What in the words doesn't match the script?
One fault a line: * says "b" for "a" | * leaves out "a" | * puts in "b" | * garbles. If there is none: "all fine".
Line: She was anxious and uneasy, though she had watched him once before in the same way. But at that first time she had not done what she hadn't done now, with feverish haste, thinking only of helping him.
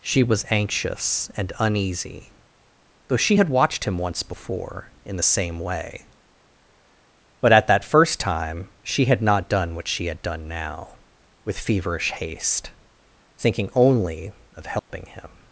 * says "had" for "hadn't"